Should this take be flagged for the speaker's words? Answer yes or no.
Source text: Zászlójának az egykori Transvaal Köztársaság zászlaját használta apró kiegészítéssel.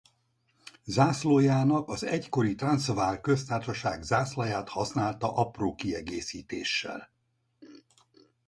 no